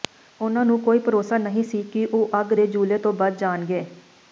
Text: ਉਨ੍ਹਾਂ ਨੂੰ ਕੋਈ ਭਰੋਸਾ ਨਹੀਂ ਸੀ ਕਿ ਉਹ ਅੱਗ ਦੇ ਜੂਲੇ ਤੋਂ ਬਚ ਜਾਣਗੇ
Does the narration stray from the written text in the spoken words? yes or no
no